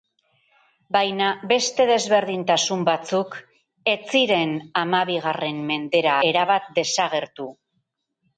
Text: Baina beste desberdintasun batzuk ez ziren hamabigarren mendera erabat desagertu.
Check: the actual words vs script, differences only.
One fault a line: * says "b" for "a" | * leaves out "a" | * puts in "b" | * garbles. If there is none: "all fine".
all fine